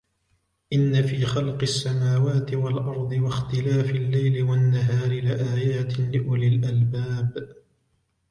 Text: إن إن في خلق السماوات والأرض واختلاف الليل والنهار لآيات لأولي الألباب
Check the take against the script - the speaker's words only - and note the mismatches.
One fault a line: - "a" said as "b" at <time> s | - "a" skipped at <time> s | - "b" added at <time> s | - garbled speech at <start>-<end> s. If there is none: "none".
- "إن" skipped at 1.0 s